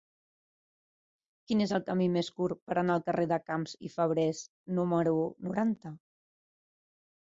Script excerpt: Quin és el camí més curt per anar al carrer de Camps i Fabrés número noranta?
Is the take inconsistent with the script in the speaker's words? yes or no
no